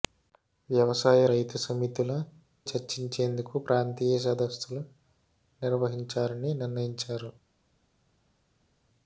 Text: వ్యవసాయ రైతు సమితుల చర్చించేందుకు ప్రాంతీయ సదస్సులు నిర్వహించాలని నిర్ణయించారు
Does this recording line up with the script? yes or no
yes